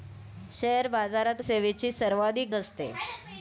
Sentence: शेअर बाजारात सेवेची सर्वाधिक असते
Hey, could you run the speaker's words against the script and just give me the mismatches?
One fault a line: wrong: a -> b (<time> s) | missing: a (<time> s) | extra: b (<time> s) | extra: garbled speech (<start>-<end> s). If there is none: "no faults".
no faults